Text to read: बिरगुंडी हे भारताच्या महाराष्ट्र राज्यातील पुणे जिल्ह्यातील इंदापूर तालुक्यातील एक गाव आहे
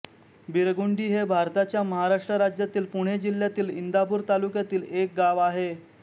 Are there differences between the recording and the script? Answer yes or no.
no